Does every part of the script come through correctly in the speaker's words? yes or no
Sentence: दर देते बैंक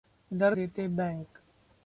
yes